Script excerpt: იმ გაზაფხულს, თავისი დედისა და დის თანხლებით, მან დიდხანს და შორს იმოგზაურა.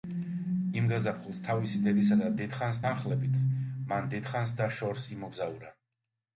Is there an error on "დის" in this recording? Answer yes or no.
yes